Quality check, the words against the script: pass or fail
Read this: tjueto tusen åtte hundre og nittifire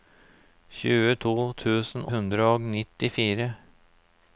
fail